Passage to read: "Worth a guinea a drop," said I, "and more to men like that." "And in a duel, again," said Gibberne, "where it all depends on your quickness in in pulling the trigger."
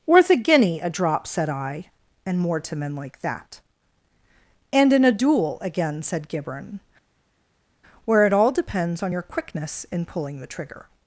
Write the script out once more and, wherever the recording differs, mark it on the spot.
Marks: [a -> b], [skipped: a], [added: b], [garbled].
"Worth a guinea a drop," said I, "and more to men like that." "And in a duel, again," said Gibberne, "where it all depends on your quickness in [skipped: in] pulling the trigger."